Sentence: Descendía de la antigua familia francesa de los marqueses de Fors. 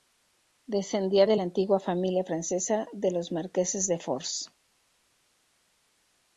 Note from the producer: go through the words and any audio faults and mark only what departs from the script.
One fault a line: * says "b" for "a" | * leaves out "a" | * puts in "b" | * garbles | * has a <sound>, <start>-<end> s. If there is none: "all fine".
all fine